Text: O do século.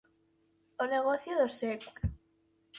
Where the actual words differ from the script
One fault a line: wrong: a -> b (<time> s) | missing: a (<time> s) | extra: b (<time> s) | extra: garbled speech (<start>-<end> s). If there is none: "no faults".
extra: negocio (0.9 s)